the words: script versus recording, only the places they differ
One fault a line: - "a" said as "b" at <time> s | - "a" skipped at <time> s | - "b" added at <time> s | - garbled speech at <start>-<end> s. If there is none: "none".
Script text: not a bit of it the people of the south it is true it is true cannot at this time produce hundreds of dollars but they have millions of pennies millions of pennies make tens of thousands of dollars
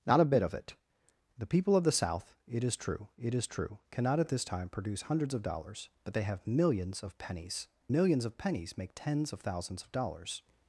none